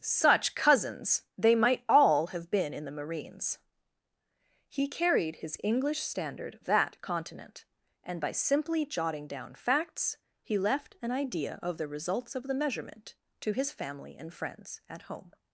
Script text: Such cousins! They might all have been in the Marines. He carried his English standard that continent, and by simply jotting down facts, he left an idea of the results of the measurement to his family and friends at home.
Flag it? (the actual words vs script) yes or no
no